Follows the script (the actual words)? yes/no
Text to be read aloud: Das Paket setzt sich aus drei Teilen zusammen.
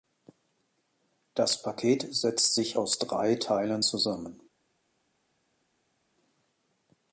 yes